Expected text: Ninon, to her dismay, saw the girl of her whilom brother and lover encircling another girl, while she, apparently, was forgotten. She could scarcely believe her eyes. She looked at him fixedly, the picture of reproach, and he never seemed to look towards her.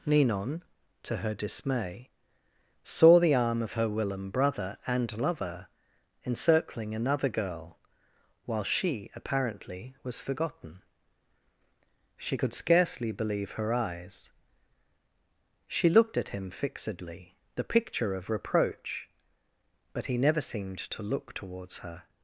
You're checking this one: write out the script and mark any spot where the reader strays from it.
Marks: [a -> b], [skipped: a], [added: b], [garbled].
Ninon, to her dismay, saw the [girl -> arm] of her whilom brother and lover encircling another girl, while she, apparently, was forgotten. She could scarcely believe her eyes. She looked at him fixedly, the picture of reproach, [and -> but] he never seemed to look towards her.